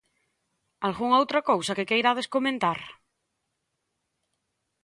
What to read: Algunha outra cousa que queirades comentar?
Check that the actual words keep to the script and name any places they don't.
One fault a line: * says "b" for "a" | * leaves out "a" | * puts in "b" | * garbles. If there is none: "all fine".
all fine